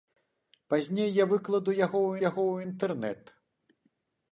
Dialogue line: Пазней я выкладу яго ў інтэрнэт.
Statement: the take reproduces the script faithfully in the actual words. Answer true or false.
false